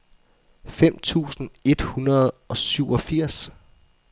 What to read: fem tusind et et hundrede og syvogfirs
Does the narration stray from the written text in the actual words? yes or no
yes